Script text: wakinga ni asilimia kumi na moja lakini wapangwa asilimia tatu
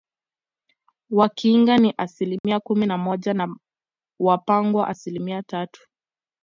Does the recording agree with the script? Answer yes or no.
no